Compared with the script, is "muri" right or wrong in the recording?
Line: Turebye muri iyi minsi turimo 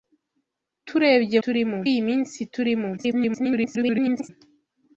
wrong